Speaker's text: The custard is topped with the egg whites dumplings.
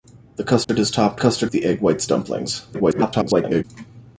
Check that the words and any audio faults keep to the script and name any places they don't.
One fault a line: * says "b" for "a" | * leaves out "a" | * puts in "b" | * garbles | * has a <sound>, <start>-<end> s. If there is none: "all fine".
* has a dropout, 0.6-0.7 s
* says "custard" for "with"
* garbles